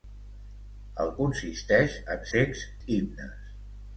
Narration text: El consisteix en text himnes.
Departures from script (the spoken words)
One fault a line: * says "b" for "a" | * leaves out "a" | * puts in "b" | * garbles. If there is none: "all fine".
all fine